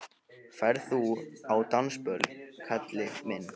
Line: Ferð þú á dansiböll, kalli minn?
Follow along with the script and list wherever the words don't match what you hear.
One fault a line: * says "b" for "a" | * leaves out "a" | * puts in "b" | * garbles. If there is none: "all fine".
all fine